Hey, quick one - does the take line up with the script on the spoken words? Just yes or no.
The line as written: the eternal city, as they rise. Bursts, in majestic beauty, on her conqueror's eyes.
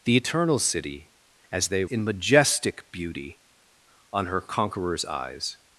no